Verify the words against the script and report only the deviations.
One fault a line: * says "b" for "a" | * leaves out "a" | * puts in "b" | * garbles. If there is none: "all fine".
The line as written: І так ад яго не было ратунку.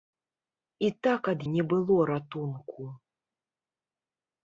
* leaves out "яго"